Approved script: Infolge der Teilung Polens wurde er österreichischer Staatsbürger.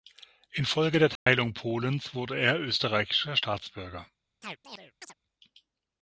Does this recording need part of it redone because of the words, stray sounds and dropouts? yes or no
yes